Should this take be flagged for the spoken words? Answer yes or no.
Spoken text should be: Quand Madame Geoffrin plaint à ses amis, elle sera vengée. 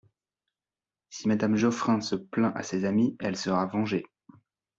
yes